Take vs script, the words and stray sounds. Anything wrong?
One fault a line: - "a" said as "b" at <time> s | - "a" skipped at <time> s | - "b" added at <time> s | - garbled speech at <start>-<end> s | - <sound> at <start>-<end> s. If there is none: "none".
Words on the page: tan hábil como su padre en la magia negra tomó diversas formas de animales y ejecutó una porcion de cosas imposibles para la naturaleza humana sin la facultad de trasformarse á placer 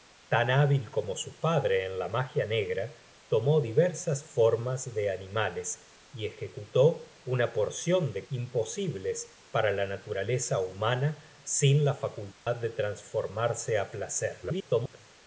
- "cosas" skipped at 8.3 s
- dropout at 12.3-12.5 s
- garbled speech at 14.4-15.0 s